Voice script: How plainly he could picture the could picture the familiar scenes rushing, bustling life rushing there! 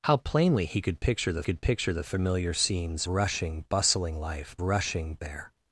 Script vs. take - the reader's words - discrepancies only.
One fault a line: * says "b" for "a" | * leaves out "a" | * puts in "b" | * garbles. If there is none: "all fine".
all fine